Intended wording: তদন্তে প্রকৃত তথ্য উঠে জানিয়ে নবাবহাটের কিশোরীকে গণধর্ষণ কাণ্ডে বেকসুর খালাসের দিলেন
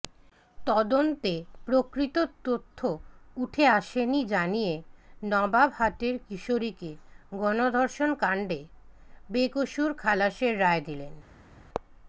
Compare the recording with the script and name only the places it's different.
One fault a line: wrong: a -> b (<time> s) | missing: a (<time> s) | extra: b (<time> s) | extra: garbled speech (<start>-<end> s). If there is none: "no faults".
extra: আসেনি (3.7 s)
extra: রায় (10.6 s)